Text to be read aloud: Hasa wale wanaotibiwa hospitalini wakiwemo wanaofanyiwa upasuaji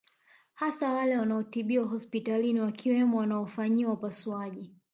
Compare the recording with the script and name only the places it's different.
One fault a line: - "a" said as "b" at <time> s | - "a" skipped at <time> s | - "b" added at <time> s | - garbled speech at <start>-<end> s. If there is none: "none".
none